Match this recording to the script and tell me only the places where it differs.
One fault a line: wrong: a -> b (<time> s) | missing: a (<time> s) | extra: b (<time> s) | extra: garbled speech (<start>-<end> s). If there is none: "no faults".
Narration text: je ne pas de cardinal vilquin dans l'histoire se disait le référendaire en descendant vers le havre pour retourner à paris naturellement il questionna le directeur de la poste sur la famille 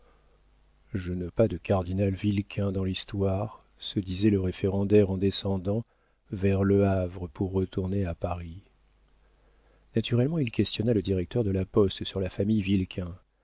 no faults